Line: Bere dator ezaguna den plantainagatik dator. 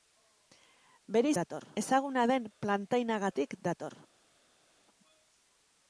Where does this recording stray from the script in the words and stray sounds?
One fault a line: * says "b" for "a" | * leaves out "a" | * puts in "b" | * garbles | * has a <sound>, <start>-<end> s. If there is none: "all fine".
all fine